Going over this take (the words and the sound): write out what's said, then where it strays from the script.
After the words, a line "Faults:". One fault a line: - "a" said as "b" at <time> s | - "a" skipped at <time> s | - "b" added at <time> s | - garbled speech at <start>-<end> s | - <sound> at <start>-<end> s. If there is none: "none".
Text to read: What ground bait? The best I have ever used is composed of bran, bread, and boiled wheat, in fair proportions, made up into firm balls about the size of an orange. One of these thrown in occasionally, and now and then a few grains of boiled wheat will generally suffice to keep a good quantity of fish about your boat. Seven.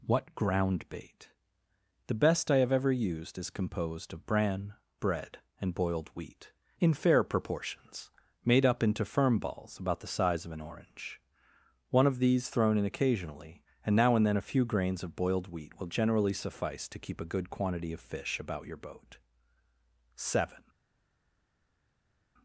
What ground bait? The best I have ever used is composed of bran, bread, and boiled wheat, in fair proportions, made up into firm balls about the size of an orange. One of these thrown in occasionally, and now and then a few grains of boiled wheat will generally suffice to keep a good quantity of fish about your boat. Seven.
Faults:
none